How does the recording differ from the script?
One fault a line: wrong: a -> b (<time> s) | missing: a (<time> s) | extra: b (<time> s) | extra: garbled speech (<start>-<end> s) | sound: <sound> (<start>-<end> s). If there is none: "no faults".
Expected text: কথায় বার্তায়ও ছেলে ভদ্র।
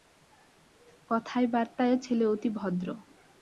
extra: অতি (2.2 s)